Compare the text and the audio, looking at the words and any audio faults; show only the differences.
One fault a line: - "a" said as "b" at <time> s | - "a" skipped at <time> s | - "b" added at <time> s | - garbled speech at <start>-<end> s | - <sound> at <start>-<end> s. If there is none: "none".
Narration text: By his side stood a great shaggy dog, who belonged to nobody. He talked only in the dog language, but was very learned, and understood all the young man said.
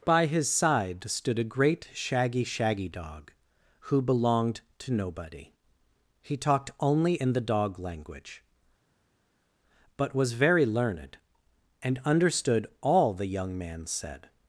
- "shaggy" added at 2.4 s